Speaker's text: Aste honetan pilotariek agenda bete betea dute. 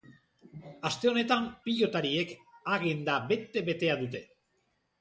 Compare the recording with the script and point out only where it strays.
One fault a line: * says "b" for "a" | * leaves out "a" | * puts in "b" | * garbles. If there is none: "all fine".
all fine